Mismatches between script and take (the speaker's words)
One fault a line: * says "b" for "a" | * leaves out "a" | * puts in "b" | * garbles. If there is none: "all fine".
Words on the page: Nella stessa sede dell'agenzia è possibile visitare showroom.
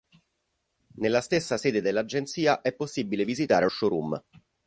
all fine